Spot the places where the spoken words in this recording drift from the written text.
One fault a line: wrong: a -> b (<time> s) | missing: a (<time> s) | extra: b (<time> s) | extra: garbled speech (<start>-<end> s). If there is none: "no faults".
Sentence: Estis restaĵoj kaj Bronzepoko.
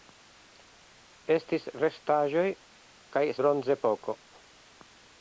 no faults